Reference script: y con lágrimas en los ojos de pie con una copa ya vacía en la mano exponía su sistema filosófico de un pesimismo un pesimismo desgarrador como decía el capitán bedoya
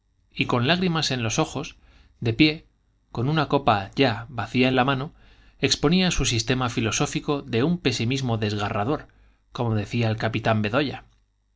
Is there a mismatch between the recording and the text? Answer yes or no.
yes